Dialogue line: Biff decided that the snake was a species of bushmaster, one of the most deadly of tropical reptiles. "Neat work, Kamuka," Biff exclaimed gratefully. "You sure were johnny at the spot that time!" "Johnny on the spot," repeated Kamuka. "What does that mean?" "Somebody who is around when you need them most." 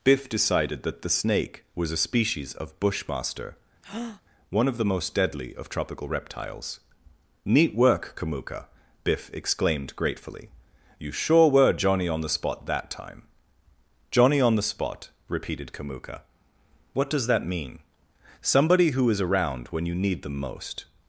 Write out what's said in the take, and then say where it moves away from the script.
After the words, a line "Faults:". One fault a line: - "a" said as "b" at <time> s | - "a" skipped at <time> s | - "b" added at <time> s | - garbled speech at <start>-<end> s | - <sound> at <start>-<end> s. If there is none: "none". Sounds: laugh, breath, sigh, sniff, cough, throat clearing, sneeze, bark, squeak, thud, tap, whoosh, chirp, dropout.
Biff decided that the snake was a species of bushmaster, one of the most deadly of tropical reptiles. "Neat work, Kamuka," Biff exclaimed gratefully. "You sure were johnny on the spot that time!" "Johnny on the spot," repeated Kamuka. "What does that mean?" "Somebody who is around when you need them most."
Faults:
- breath at 3.8-4.2 s
- "at" said as "on" at 12.1 s